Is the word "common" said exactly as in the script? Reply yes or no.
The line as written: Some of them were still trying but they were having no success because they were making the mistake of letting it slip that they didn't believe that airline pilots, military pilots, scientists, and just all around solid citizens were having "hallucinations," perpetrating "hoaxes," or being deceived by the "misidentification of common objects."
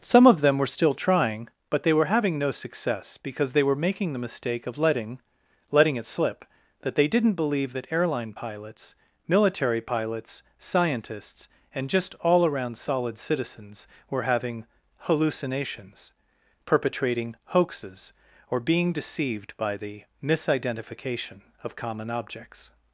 yes